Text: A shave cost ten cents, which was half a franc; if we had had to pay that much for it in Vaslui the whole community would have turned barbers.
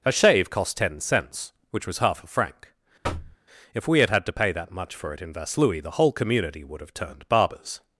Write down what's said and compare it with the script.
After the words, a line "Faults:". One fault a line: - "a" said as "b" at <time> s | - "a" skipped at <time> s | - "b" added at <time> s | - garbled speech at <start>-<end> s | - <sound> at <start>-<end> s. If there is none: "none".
A shave cost ten cents, which was half a franc; if we had had to pay that much for it in Vaslui the whole community would have turned barbers.
Faults:
- thud at 3.0-3.4 s